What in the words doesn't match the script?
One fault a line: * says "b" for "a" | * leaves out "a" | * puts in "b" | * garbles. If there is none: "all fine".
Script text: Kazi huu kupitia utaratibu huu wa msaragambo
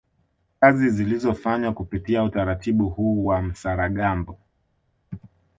* says "zilizofanywa" for "huu"